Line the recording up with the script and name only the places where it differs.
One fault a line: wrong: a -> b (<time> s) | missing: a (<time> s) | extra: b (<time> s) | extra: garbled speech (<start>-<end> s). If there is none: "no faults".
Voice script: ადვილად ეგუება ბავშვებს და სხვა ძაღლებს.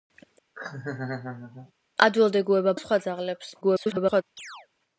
missing: ბავშვებს (2.7 s)
extra: garbled speech (3.6-4.2 s)